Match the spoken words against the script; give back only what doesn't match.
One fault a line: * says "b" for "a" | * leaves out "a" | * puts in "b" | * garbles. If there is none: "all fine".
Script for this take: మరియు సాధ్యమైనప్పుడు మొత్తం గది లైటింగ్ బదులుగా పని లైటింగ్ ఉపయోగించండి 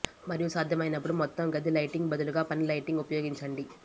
all fine